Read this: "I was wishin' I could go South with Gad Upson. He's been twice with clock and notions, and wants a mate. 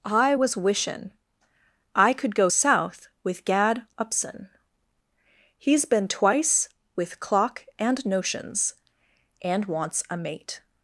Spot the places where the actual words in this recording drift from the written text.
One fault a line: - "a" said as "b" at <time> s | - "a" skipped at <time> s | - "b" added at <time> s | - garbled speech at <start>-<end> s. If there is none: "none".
none